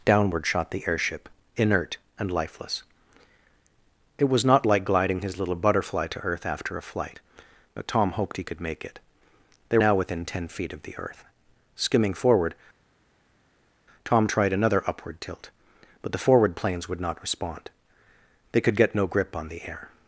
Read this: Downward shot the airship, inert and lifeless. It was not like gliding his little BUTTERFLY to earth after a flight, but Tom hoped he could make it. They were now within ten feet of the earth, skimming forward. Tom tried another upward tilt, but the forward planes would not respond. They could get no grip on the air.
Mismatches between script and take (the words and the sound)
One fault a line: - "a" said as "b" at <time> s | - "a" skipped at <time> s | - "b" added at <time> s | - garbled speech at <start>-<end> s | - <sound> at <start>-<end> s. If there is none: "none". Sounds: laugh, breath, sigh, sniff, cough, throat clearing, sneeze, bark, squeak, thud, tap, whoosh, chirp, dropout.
- "were" skipped at 9.8 s